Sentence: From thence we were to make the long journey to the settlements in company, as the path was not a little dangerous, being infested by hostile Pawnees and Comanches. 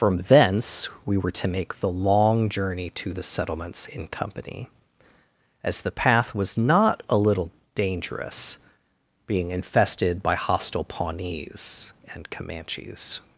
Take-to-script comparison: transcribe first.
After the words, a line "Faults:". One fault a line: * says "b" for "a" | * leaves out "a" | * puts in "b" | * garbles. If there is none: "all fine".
From thence we were to make the long journey to the settlements in company, as the path was not a little dangerous, being infested by hostile Pawnees and Comanches.
Faults:
all fine